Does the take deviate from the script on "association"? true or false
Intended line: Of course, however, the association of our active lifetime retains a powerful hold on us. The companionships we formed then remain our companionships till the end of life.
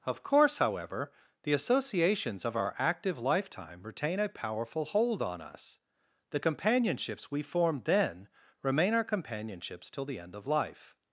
true